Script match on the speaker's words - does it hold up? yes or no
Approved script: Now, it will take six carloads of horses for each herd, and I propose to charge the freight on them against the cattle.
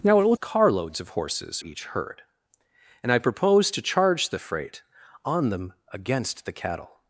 no